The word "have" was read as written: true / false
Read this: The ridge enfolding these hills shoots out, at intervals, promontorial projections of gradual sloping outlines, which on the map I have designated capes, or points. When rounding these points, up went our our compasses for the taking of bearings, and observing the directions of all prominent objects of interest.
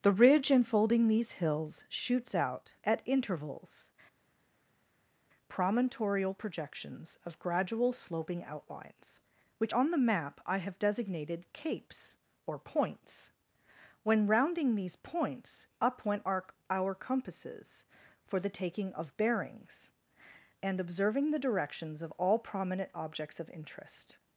true